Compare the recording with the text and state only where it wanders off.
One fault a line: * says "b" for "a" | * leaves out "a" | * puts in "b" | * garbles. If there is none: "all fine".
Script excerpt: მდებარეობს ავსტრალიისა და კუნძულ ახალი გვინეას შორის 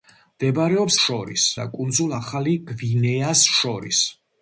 * says "შორის" for "ავსტრალიისა"